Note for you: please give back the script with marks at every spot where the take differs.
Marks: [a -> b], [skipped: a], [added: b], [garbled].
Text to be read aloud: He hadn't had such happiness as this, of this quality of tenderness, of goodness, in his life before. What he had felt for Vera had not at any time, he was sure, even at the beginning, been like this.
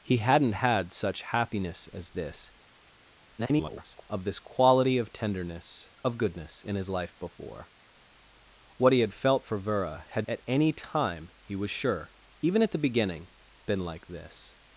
He hadn't had such happiness as this, [garbled] of this quality of tenderness, of goodness, in his life before. What he had felt for Vera had [skipped: not] at any time, he was sure, even at the beginning, been like this.